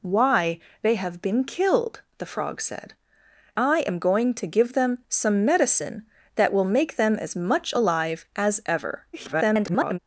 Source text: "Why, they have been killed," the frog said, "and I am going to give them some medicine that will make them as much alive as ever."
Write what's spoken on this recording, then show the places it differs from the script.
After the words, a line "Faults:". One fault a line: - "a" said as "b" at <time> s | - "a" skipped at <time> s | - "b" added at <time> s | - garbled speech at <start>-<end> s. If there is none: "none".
"Why, they have been killed," the frog said, "I am going to give them some medicine that will make them as much alive as ever." [garbled]
Faults:
- "and" skipped at 3.0 s
- garbled speech at 9.1-10.0 s